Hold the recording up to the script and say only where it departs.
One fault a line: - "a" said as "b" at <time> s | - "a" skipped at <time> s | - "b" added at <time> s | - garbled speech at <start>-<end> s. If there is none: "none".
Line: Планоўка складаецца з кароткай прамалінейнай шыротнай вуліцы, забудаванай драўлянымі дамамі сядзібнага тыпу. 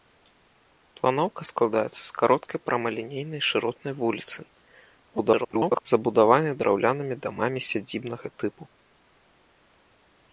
- garbled speech at 5.1-5.8 s